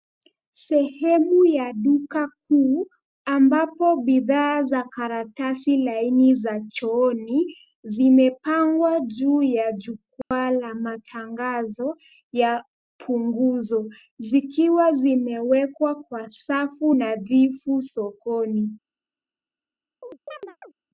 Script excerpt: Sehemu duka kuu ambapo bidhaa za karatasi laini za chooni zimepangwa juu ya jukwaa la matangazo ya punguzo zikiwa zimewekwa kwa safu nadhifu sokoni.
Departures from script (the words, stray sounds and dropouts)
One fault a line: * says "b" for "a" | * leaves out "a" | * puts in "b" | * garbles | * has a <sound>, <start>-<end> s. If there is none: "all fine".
* puts in "ya"
* has a dropout, 10.2-10.3 s
* has a chirp, 20.0-20.7 s